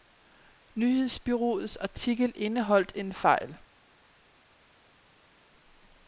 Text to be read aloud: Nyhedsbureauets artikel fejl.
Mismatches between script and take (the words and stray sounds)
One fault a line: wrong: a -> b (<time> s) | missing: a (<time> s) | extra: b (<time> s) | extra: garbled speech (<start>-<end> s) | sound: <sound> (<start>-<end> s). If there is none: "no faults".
extra: indeholdt en (2.4 s)